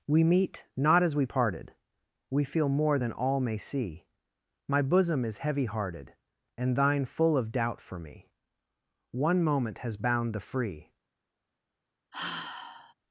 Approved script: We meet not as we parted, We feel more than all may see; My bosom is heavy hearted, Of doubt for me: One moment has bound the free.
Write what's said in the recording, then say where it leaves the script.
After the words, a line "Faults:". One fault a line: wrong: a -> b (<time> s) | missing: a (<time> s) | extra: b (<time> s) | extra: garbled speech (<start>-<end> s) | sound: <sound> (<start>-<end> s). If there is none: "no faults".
We meet not as we parted, We feel more than all may see; My bosom is heavy hearted, And thine full of doubt for me: One moment has bound the free.
Faults:
extra: And thine full (6.6 s)
sound: sigh (12.1-12.9 s)